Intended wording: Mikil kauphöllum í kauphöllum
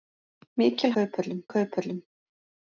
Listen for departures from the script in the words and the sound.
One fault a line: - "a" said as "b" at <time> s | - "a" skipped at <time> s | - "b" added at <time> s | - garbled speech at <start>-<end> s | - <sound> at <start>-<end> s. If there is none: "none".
none